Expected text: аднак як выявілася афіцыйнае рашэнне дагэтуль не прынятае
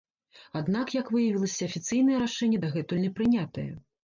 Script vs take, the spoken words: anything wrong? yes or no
no